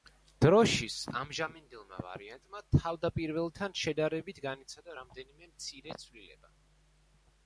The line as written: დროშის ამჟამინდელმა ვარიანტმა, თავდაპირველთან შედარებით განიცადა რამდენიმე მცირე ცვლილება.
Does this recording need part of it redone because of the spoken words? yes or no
no